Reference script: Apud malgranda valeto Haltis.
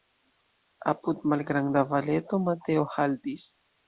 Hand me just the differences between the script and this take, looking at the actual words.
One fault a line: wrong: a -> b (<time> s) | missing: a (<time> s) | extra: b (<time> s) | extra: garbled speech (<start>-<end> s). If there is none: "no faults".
extra: Mateo (2.5 s)